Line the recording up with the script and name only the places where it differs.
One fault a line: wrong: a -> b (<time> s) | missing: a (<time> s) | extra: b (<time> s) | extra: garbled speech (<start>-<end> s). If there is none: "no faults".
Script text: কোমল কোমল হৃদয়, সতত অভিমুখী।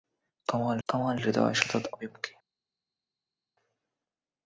no faults